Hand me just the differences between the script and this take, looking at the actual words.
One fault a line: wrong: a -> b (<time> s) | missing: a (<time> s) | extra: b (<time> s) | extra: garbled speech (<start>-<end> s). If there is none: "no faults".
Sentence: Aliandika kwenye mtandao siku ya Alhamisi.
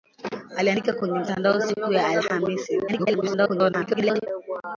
extra: garbled speech (2.9-4.3 s)